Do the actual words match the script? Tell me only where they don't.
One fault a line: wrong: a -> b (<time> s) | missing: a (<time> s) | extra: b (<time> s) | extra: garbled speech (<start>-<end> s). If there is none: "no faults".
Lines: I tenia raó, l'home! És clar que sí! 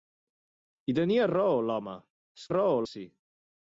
wrong: clar -> raó (2.5 s)